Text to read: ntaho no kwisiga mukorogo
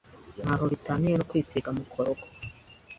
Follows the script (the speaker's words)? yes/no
no